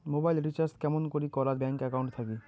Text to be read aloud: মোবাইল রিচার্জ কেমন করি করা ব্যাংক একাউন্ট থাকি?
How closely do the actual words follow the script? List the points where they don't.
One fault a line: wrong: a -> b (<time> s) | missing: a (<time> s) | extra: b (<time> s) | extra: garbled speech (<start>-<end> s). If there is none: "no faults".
no faults